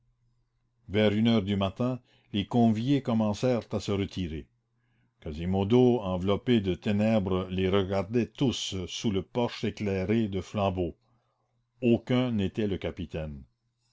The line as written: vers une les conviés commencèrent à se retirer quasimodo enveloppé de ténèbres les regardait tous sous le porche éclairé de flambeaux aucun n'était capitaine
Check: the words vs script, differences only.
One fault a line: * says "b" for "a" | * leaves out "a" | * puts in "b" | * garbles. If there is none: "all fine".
* puts in "heure du matin"
* puts in "le"